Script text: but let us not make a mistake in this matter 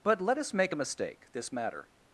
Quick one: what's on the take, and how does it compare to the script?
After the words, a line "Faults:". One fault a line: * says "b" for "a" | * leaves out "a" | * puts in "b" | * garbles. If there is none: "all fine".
but let us make a mistake this matter
Faults:
* leaves out "not"
* leaves out "in"